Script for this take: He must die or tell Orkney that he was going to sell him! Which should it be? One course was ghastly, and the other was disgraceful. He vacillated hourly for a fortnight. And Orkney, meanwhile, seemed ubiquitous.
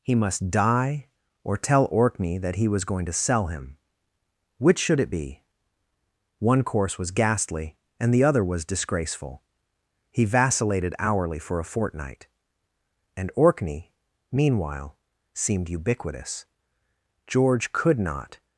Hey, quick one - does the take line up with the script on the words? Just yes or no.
no